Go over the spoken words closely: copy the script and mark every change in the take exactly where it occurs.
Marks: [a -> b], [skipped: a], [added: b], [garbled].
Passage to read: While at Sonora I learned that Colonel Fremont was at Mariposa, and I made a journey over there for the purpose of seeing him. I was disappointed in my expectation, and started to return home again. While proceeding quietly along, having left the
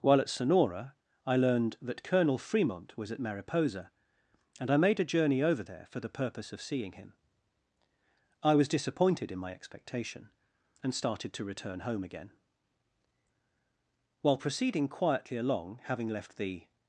While at Sonora I learned that Colonel Fremont was at Mariposa, and I made a journey over there for the purpose of seeing him. I was disappointed in my expectation, and started to return home again. While proceeding quietly along, having left the